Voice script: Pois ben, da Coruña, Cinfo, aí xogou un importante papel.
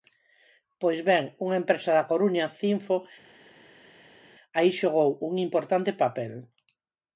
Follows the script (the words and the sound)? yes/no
no